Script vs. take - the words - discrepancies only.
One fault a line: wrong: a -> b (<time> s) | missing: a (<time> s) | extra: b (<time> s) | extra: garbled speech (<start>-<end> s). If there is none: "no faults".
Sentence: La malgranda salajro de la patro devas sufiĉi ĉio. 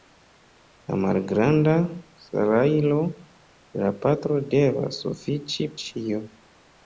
no faults